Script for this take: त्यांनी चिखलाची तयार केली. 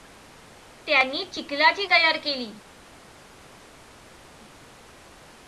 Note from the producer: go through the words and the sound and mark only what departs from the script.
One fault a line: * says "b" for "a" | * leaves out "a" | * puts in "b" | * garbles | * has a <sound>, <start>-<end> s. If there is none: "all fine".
all fine